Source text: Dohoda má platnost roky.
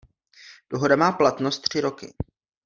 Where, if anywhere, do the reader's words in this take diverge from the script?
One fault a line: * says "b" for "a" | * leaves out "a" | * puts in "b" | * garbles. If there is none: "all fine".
* puts in "tři"